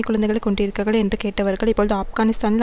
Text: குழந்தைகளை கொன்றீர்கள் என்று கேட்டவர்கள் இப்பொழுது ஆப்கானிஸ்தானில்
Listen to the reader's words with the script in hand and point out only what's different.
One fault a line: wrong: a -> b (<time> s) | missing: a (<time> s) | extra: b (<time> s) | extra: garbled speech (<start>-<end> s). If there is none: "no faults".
no faults